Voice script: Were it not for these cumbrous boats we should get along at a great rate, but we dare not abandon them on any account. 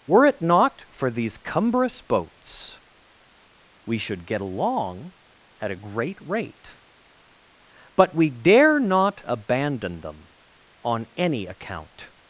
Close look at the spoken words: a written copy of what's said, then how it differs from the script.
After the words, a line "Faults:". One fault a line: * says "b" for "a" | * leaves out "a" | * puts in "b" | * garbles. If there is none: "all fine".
Were it not for these cumbrous boats we should get along at a great rate, but we dare not abandon them on any account.
Faults:
all fine